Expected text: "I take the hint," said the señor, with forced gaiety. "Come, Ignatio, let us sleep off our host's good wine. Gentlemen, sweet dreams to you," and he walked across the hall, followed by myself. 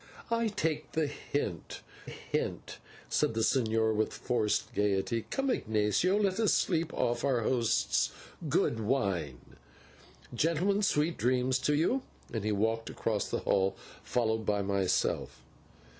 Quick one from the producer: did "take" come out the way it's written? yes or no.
yes